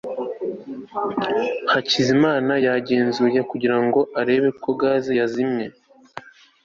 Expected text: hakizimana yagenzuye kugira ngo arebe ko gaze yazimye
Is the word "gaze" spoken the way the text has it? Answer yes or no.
yes